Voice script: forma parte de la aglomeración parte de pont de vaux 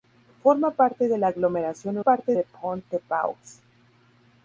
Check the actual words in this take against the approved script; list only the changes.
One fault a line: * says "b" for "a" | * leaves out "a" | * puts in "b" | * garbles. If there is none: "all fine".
all fine